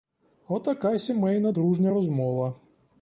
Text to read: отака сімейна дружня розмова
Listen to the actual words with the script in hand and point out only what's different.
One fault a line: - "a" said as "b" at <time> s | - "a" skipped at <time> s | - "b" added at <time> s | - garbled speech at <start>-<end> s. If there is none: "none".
none